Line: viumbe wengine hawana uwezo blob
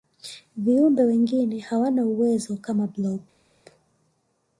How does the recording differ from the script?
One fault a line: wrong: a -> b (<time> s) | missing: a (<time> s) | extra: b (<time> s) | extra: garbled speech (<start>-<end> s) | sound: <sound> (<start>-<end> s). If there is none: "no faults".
extra: kama (2.6 s)